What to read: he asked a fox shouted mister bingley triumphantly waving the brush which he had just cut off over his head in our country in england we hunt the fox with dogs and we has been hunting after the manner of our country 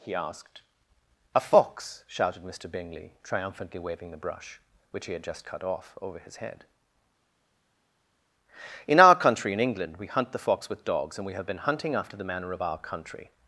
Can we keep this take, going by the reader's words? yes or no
no